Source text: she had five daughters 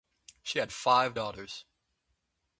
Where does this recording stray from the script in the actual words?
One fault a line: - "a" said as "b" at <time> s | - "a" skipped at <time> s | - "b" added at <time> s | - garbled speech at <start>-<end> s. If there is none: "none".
none